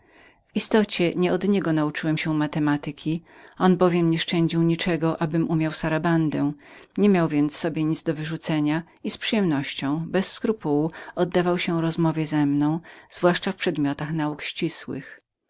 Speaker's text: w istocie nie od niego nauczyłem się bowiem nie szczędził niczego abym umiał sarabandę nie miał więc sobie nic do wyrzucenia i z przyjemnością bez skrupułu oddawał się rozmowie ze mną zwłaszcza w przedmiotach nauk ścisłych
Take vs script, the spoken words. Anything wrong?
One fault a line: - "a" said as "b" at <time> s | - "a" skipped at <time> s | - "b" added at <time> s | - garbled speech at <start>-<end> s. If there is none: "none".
- "matematyki on" added at 2.3 s